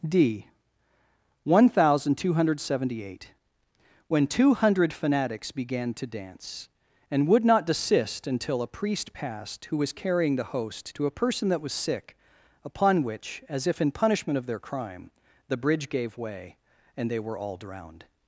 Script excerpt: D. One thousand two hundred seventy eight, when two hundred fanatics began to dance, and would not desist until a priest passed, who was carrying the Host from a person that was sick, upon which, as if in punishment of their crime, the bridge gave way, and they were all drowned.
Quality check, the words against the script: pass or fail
fail